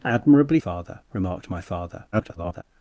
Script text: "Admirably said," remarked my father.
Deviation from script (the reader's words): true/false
true